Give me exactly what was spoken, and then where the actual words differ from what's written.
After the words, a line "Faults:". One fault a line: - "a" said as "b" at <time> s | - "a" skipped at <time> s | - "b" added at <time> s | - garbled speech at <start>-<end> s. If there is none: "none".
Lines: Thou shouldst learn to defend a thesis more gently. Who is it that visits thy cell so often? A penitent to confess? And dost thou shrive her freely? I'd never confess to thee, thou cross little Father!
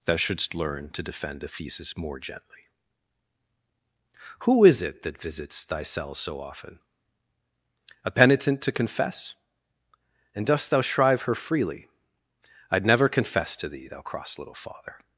Thou shouldst learn to defend a thesis more gently. Who is it that visits thy cell so often? A penitent to confess? And dost thou shrive her freely? I'd never confess to thee, thou cross little Father!
Faults:
none